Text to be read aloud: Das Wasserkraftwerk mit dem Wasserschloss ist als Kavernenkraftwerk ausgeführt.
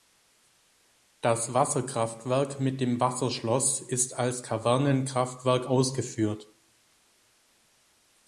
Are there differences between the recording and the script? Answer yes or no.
no